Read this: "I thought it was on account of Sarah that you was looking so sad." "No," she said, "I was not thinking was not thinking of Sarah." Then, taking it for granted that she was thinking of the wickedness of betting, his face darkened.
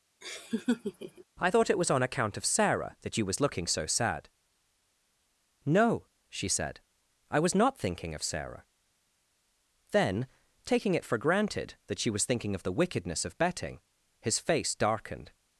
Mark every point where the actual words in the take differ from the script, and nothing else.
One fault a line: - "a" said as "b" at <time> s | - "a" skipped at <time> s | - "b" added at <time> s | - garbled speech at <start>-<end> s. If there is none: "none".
- "was not thinking" skipped at 8.1 s